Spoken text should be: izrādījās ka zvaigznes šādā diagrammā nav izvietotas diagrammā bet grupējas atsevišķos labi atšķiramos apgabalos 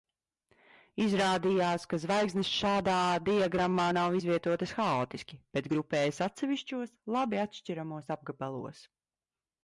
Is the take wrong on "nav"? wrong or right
right